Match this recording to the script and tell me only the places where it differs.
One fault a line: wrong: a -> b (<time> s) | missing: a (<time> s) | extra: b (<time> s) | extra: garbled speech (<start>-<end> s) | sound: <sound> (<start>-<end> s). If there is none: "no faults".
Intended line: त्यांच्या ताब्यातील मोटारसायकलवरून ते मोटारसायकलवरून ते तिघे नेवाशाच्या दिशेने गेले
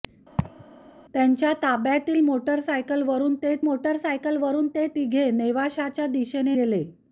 sound: laugh (0.4-0.6 s)